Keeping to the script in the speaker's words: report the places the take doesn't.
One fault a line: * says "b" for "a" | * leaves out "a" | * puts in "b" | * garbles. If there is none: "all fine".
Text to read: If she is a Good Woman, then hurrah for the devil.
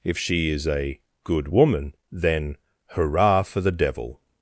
all fine